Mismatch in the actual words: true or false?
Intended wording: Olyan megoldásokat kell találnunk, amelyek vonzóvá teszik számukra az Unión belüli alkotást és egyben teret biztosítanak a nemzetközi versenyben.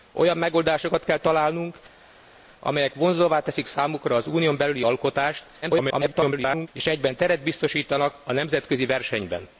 true